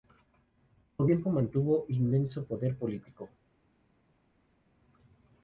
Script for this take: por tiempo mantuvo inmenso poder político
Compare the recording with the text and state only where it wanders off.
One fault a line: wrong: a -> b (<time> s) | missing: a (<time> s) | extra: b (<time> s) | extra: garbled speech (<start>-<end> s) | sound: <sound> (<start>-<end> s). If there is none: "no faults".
no faults